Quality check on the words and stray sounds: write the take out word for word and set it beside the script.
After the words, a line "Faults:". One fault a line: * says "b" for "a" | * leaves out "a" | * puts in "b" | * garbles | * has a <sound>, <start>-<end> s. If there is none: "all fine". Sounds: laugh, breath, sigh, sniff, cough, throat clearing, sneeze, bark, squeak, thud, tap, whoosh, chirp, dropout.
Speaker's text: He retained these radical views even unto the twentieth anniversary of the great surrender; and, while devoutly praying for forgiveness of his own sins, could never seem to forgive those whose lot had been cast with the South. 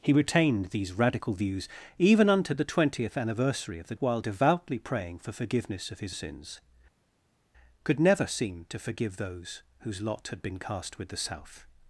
He retained these radical views even unto the twentieth anniversary of the while devoutly praying for forgiveness of his sins, could never seem to forgive those whose lot had been cast with the South.
Faults:
* leaves out "great surrender and"
* leaves out "own"